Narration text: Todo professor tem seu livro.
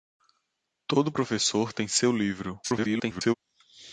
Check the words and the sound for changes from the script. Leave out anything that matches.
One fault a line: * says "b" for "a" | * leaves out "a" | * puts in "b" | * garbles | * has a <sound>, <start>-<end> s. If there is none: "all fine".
* garbles